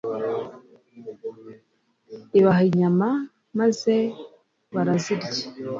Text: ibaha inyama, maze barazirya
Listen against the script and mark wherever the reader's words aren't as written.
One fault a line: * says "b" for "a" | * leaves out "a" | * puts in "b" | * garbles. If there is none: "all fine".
all fine